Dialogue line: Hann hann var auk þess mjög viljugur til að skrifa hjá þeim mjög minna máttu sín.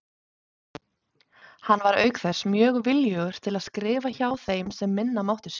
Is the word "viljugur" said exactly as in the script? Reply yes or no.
yes